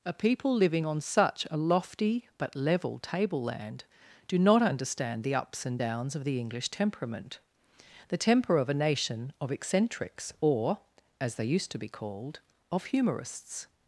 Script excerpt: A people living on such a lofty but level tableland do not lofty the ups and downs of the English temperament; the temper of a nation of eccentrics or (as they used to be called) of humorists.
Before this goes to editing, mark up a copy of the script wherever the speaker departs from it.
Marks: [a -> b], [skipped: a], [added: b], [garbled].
A people living on such a lofty but level tableland do not [lofty -> understand] the ups and downs of the English temperament; the temper of a nation of eccentrics or (as they used to be called) of humorists.